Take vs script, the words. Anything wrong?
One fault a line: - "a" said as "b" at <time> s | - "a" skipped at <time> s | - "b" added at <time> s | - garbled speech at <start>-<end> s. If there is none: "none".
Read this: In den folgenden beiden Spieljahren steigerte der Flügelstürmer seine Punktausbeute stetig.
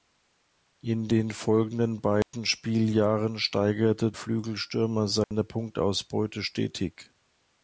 - "der" skipped at 4.1 s